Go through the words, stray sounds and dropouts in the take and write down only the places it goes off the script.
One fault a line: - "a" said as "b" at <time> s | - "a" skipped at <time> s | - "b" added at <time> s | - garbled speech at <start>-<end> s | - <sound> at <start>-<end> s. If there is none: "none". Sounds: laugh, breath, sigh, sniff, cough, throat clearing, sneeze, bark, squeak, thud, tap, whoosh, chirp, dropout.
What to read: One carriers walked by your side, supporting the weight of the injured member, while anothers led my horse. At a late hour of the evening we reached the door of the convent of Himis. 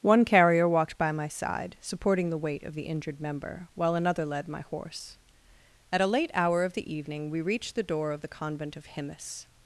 - "carriers" said as "carrier" at 0.2 s
- "your" said as "my" at 1.1 s
- "anothers" said as "another" at 3.9 s